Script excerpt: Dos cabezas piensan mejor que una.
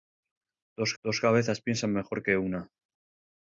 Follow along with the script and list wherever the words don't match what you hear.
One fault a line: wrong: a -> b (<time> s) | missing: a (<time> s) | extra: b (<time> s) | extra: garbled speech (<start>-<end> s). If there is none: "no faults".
extra: dos (1.0 s)